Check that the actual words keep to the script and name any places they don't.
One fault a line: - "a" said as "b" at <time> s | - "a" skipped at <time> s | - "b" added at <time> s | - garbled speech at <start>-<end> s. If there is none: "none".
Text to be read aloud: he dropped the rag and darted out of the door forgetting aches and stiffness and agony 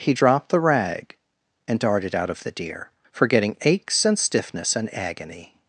- "door" said as "deer" at 2.5 s